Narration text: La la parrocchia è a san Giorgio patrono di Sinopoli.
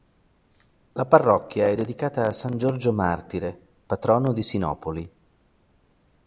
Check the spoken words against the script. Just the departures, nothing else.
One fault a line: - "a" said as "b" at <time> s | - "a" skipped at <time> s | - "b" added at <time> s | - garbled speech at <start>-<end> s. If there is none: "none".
- "la" skipped at 1.1 s
- "dedicata" added at 1.7 s
- "martire" added at 2.9 s